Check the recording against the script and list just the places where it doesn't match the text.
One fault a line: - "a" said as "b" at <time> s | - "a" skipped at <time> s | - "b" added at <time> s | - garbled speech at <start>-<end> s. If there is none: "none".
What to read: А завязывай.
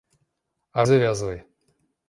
none